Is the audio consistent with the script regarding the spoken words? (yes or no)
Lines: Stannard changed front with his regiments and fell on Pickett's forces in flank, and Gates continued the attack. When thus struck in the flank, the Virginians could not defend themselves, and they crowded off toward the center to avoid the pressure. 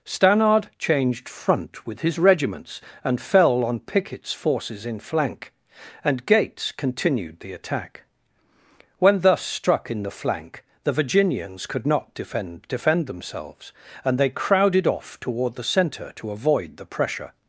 no